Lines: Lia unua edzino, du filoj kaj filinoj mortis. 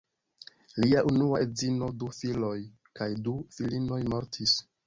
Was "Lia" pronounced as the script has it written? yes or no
yes